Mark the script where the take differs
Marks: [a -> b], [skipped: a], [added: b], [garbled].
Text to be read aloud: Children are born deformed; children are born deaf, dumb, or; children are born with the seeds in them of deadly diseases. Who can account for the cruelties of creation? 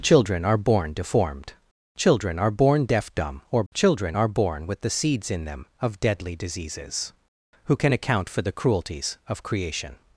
Children are born deformed; children are born deaf, dumb, or; children are born with the seeds in them of deadly diseases. Who can account for the cruelties of creation?